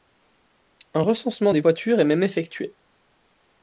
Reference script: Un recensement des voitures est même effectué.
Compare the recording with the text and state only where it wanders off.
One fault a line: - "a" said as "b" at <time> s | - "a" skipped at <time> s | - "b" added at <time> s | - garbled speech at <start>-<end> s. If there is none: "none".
none